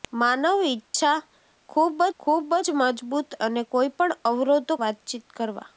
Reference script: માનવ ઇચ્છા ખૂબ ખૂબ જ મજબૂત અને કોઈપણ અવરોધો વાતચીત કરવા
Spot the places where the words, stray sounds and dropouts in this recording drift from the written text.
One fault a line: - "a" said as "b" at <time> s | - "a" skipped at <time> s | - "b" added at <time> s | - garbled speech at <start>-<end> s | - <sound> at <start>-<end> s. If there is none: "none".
- dropout at 0.9-0.9 s